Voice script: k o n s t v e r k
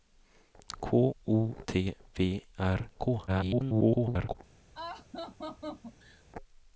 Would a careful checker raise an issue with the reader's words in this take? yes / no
yes